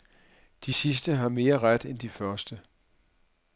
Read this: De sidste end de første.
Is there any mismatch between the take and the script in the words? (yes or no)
yes